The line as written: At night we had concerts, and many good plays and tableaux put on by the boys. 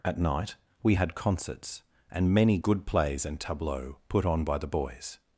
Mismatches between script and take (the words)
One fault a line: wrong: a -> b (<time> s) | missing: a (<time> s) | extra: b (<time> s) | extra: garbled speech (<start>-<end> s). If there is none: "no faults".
no faults